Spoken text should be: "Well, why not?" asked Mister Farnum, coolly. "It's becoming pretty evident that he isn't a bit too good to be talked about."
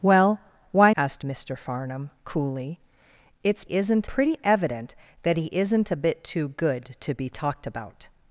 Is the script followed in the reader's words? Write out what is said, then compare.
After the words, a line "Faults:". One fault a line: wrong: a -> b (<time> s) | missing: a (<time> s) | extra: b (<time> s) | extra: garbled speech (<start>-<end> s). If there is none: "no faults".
"Well, why?" asked Mister Farnum, coolly. "It's isn't pretty evident that he isn't a bit too good to be talked about."
Faults:
missing: not (0.9 s)
wrong: becoming -> isn't (3.6 s)